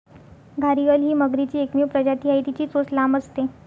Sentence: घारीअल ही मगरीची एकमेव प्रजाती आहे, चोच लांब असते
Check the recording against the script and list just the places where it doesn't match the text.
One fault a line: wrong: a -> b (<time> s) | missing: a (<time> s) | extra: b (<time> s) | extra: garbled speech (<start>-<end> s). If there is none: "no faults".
extra: तिची (2.4 s)